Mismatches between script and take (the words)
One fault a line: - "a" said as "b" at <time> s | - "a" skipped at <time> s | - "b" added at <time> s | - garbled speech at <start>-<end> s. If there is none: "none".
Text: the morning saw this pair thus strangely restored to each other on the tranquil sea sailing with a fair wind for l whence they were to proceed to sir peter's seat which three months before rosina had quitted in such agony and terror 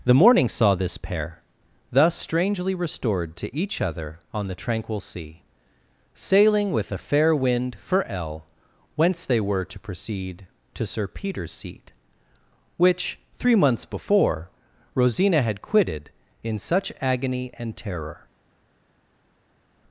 none